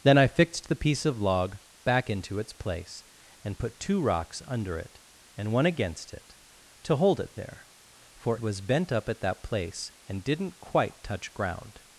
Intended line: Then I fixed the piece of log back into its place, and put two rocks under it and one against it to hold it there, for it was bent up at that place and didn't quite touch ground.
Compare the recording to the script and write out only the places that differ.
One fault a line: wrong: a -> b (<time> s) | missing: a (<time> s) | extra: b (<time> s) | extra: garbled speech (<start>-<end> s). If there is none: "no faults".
missing: it (8.4 s)